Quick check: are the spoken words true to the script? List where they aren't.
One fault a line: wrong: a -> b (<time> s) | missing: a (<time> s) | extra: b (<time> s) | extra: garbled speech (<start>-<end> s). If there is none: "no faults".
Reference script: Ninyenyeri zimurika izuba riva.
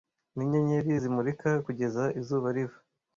extra: kugeza (1.6 s)